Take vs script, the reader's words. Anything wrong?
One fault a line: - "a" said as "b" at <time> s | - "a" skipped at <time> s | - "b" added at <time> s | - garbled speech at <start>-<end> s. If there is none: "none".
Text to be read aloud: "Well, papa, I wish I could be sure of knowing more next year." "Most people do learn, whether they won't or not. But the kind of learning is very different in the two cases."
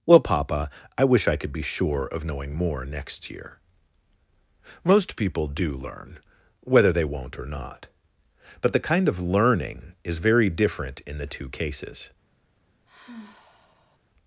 none